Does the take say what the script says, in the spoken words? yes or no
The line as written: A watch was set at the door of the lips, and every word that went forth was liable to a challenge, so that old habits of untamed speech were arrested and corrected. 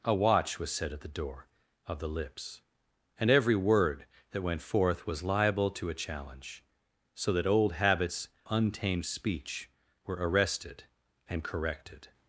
no